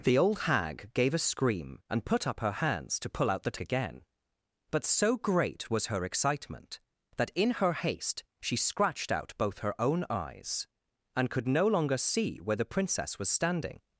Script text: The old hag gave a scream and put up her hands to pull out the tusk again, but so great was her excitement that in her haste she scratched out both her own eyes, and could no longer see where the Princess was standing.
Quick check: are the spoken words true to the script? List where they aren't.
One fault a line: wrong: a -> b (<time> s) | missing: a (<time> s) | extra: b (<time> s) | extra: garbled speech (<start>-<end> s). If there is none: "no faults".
missing: tusk (3.6 s)